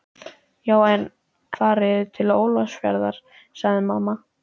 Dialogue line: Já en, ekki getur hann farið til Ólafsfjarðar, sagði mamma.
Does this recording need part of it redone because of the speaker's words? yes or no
yes